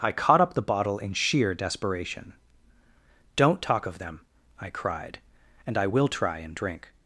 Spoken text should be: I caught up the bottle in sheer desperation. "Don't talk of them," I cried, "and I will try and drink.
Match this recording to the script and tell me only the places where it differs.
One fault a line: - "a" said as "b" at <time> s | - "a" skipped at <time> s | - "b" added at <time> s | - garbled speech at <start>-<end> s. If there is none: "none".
none